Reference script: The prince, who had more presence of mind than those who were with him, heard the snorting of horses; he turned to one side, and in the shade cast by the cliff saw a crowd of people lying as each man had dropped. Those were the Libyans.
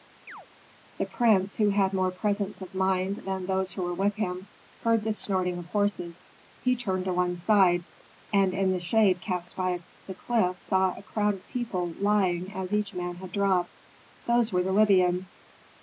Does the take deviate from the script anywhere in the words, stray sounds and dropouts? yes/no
yes